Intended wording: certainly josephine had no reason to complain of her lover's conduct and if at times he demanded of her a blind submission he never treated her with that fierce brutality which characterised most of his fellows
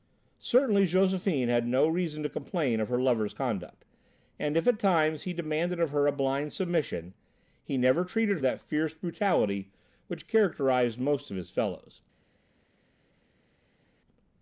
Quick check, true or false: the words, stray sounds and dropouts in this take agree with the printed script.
false